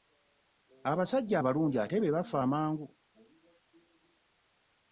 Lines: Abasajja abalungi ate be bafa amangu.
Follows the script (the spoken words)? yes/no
yes